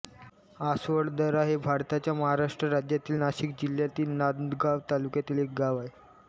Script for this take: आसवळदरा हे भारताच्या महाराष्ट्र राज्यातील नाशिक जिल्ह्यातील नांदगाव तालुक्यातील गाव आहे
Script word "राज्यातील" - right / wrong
right